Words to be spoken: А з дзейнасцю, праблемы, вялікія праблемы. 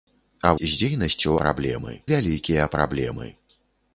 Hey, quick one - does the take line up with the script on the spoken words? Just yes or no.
yes